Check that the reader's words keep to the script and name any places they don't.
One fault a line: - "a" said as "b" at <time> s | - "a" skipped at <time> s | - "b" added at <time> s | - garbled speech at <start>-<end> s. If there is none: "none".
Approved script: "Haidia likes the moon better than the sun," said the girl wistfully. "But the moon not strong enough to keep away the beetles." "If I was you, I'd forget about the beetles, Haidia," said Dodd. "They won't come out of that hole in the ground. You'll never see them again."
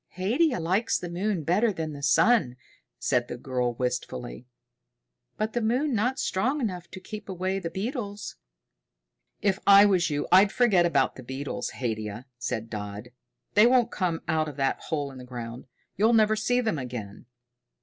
none